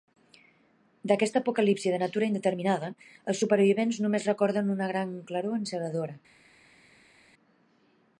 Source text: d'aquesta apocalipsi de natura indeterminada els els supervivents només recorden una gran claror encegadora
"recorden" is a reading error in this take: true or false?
false